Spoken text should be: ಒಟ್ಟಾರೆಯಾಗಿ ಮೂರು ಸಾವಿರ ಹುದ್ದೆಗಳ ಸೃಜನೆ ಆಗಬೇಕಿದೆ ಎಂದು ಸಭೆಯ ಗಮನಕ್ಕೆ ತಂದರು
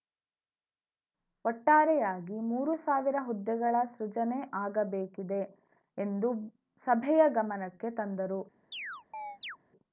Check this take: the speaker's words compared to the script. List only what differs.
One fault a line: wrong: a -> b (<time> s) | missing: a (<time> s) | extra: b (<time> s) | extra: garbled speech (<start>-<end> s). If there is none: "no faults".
no faults